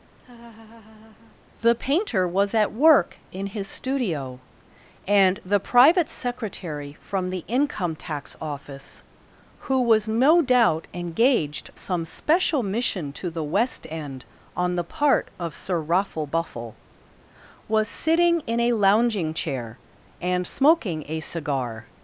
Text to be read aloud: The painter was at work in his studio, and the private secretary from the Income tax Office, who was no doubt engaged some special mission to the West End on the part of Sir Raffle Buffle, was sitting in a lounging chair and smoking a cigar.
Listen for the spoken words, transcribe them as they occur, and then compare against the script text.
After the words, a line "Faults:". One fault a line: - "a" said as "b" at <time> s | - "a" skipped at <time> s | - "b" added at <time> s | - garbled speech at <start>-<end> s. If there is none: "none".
The painter was at work in his studio, and the private secretary from the Income tax Office, who was no doubt engaged some special mission to the West End on the part of Sir Raffle Buffle, was sitting in a lounging chair and smoking a cigar.
Faults:
none